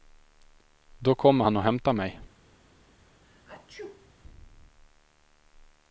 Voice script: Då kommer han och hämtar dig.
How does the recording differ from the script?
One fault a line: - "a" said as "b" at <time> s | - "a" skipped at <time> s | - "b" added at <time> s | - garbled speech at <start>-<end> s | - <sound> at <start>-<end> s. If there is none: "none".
- "dig" said as "mig" at 1.9 s
- sneeze at 3.2-4.1 s